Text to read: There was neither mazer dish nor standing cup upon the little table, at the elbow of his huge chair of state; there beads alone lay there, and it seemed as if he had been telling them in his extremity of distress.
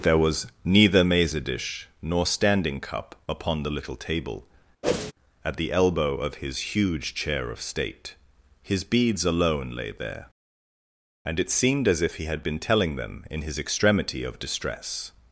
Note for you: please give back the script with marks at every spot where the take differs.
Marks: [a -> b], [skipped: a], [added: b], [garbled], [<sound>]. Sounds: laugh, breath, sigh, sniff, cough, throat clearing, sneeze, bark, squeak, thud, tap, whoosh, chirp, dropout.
There was neither mazer dish nor standing cup upon the little table, [whoosh] at the elbow of his huge chair of state; [there -> his] beads alone lay there, and it seemed as if he had been telling them in his extremity of distress.